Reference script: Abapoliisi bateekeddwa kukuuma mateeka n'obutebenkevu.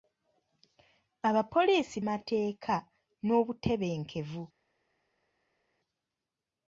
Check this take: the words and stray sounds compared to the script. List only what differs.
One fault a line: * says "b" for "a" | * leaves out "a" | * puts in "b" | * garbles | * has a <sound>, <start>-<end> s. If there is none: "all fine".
* leaves out "bateekeddwa kukuuma"